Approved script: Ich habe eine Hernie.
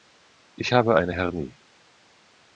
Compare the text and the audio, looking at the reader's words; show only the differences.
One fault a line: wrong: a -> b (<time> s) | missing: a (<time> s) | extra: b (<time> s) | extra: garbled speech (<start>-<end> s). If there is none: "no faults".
no faults